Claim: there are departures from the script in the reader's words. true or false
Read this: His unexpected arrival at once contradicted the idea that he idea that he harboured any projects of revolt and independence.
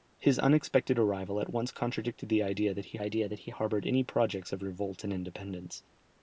false